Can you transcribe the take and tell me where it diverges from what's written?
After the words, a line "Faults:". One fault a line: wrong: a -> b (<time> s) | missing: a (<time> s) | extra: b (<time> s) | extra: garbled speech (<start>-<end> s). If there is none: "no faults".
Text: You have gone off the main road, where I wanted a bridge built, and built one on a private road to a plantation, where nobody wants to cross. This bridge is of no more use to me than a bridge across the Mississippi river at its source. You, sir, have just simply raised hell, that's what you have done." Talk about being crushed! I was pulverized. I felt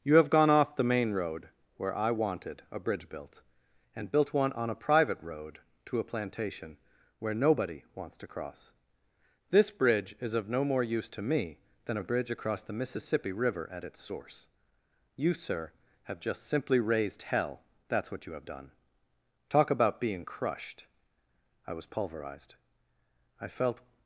You have gone off the main road, where I wanted a bridge built, and built one on a private road to a plantation, where nobody wants to cross. This bridge is of no more use to me than a bridge across the Mississippi river at its source. You, sir, have just simply raised hell, that's what you have done." Talk about being crushed! I was pulverized. I felt
Faults:
no faults